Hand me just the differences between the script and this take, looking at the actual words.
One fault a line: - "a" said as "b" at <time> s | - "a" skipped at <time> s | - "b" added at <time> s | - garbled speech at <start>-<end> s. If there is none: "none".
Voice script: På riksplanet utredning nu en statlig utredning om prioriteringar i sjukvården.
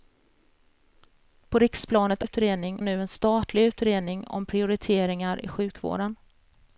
none